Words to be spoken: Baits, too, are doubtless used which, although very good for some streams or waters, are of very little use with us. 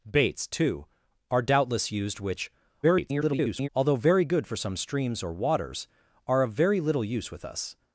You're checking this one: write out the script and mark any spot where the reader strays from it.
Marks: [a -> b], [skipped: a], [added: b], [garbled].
Baits, too, are doubtless used which, [garbled] although very good for some streams or waters, are of very little use with us.